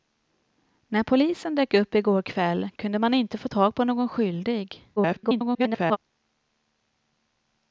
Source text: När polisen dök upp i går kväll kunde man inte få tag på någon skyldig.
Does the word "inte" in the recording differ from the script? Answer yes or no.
no